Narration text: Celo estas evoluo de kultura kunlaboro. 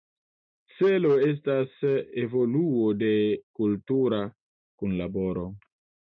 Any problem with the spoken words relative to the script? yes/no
no